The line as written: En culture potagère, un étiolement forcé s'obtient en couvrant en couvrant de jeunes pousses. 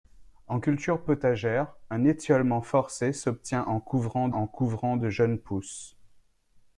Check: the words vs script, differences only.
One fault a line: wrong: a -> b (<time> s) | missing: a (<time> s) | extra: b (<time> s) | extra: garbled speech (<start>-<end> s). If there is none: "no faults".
no faults